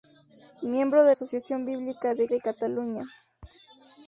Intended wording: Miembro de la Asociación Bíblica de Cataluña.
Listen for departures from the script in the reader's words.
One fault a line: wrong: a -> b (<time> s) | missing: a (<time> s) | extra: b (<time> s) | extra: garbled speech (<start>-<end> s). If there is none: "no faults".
missing: la (1.1 s)
extra: de (2.3 s)